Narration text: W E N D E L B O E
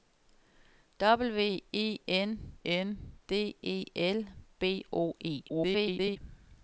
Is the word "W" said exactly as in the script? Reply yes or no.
yes